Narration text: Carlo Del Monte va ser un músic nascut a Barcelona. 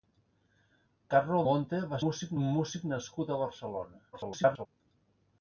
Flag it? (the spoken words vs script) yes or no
yes